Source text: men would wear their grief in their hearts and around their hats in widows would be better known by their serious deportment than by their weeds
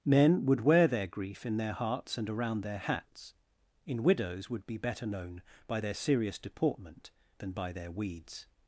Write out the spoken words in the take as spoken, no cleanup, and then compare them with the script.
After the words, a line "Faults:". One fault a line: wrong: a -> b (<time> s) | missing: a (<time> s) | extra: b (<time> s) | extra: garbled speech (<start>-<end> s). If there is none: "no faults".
men would wear their grief in their hearts and around their hats in widows would be better known by their serious deportment than by their weeds
Faults:
no faults